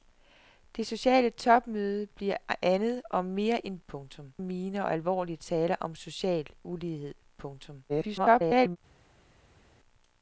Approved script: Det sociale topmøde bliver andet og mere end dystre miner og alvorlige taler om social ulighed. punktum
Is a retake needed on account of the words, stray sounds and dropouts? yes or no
yes